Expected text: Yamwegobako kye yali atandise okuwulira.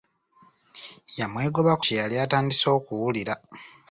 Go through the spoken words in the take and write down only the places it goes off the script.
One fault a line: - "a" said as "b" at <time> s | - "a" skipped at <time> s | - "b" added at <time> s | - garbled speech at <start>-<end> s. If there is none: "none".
none